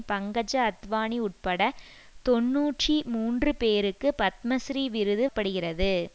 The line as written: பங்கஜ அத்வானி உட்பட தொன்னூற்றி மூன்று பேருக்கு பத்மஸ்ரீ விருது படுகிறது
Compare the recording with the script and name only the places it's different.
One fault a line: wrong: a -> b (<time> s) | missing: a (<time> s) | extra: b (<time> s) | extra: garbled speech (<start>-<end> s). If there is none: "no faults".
no faults